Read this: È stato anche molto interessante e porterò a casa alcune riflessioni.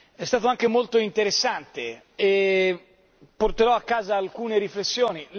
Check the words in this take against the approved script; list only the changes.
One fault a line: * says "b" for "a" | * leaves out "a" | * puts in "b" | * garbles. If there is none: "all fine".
all fine